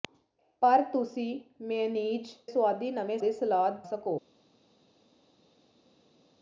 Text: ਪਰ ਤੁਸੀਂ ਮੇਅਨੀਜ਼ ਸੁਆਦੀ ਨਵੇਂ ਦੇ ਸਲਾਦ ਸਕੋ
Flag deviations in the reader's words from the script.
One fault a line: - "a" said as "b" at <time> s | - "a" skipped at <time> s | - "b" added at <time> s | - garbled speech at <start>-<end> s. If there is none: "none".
none